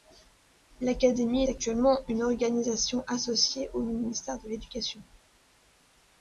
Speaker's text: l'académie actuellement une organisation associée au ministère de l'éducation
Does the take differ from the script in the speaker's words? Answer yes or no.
no